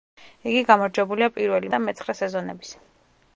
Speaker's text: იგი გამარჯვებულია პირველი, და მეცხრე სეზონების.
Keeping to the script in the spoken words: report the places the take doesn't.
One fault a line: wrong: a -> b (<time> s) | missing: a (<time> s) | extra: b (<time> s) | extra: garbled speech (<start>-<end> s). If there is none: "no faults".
no faults